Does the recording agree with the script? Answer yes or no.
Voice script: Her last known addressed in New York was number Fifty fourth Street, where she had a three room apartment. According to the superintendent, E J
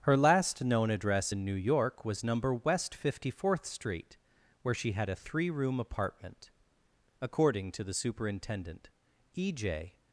no